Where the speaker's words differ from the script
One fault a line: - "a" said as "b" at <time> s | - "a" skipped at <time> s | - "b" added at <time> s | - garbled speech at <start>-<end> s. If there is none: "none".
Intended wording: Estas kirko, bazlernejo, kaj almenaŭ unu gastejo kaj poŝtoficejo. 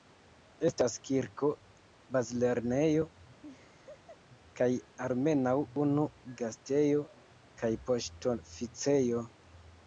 none